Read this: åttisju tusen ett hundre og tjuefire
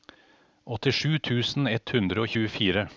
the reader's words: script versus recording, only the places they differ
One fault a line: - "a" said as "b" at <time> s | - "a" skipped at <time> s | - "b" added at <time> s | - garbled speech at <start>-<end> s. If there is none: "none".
none